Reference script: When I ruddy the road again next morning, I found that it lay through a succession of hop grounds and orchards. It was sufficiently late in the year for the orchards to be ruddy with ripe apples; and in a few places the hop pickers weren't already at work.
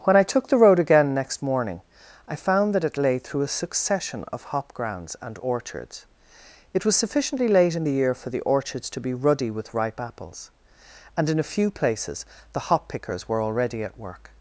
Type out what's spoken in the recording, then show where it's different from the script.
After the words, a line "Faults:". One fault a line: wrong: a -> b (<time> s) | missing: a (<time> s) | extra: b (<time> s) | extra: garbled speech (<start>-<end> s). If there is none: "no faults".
When I took the road again next morning, I found that it lay through a succession of hop grounds and orchards. It was sufficiently late in the year for the orchards to be ruddy with ripe apples; and in a few places the hop pickers were already at work.
Faults:
wrong: ruddy -> took (0.3 s)
wrong: weren't -> were (13.3 s)